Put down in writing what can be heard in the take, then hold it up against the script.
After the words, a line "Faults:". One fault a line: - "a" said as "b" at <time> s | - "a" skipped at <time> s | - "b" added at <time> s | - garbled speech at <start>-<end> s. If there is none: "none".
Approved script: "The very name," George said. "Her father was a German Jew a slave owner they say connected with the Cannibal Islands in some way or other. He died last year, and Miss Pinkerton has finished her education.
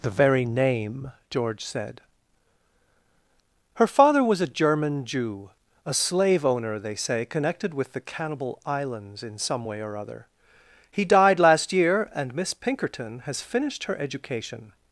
"The very name," George said. "Her father was a German Jew a slave owner they say connected with the Cannibal Islands in some way or other. He died last year, and Miss Pinkerton has finished her education.
Faults:
none